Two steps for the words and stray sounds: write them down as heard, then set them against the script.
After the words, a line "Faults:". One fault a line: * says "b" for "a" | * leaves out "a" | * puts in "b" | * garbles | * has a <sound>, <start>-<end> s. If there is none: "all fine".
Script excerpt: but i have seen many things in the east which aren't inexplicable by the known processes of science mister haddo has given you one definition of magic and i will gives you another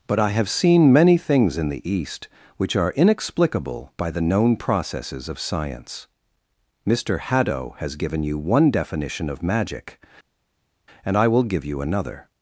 but i have seen many things in the east which are inexplicable by the known processes of science mister haddo has given you one definition of magic and i will give you another
Faults:
* says "are" for "aren't"
* says "give" for "gives"